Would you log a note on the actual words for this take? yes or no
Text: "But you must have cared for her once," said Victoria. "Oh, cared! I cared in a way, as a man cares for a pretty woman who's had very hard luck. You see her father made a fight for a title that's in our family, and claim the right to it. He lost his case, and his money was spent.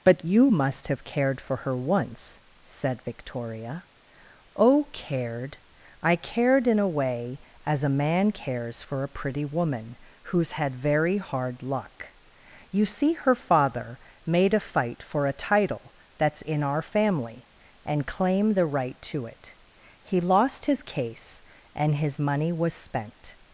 no